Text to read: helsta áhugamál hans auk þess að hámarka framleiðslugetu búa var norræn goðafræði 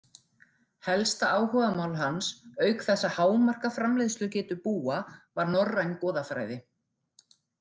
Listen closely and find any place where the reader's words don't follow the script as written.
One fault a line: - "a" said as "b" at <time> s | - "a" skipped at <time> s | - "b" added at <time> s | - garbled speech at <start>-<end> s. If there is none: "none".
none